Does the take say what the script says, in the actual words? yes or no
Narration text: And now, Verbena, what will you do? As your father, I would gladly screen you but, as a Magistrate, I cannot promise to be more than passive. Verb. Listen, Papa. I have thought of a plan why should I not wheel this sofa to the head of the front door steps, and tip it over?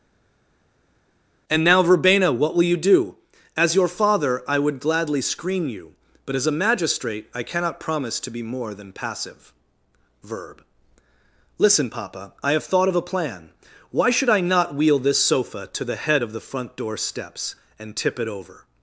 yes